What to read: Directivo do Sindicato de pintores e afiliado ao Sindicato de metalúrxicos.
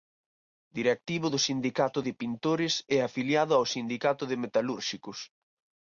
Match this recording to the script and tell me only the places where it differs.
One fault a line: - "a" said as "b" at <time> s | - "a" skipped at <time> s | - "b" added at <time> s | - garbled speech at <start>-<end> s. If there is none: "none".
none